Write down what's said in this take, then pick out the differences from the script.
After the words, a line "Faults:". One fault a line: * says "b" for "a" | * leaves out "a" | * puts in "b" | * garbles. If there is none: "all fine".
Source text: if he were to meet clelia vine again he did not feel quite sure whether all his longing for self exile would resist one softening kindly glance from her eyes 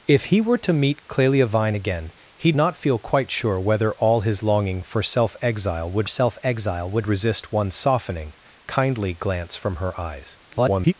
if he were to meet clelia vine again he not feel quite sure whether all his longing for self exile would self exile would resist one softening kindly glance from her eyes [garbled]
Faults:
* leaves out "did"
* puts in "self exile would"
* garbles